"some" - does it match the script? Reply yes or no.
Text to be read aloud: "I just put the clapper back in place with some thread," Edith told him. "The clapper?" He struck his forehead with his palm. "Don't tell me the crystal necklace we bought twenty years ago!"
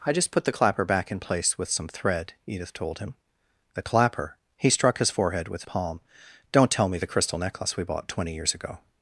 yes